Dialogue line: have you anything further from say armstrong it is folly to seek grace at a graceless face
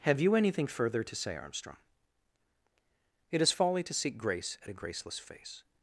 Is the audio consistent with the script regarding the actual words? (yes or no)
no